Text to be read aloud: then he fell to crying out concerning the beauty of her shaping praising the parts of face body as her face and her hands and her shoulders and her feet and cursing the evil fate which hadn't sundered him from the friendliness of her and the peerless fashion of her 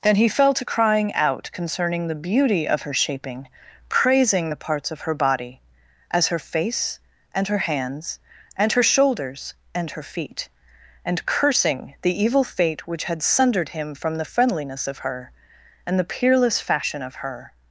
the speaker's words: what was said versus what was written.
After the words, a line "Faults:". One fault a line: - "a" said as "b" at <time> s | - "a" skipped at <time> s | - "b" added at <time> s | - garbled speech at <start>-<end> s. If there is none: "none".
then he fell to crying out concerning the beauty of her shaping praising the parts of her body as her face and her hands and her shoulders and her feet and cursing the evil fate which had sundered him from the friendliness of her and the peerless fashion of her
Faults:
- "face" said as "her" at 5.0 s
- "hadn't" said as "had" at 13.0 s